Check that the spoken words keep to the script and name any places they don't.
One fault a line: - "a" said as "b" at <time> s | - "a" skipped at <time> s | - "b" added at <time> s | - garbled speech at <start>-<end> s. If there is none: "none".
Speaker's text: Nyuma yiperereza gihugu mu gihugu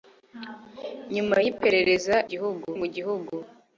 none